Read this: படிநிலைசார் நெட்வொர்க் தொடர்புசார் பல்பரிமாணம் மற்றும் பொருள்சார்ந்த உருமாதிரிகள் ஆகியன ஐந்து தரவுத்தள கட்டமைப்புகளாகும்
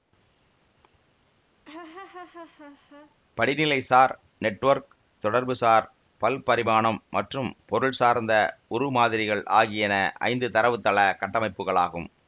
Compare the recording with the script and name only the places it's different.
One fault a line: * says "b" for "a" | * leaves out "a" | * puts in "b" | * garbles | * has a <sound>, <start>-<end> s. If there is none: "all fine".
* has a laugh, 1.6-3.2 s